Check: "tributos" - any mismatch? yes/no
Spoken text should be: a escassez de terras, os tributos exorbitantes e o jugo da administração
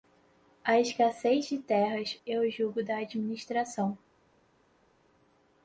yes